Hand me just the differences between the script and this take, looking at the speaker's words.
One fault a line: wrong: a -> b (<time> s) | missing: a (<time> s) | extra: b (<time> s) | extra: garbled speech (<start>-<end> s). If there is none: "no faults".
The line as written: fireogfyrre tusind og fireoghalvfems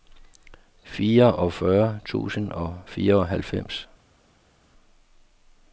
no faults